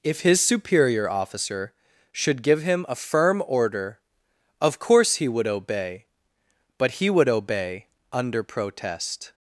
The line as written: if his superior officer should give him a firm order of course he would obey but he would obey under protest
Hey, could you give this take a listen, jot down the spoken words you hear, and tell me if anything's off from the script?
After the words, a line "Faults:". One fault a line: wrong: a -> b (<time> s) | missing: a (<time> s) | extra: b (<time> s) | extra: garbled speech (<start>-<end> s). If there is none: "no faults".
if his superior officer should give him a firm order of course he would obey but he would obey under protest
Faults:
no faults